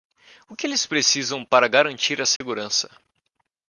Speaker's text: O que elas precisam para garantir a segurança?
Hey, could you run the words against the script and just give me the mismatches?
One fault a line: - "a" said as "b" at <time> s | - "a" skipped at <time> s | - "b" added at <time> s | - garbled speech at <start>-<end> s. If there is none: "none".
- "elas" said as "eles" at 0.7 s